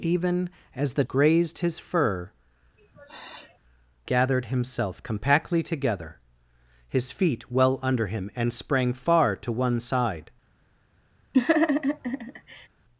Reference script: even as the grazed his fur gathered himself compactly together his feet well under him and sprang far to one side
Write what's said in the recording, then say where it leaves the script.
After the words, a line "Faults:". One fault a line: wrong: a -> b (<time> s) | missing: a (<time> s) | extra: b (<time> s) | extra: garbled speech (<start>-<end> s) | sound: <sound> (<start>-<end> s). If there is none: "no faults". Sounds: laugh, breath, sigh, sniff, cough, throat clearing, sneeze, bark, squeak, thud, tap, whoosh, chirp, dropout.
even as the grazed his fur gathered himself compactly together his feet well under him and sprang far to one side
Faults:
sound: sniff (2.8-3.6 s)
sound: laugh (11.3-12.7 s)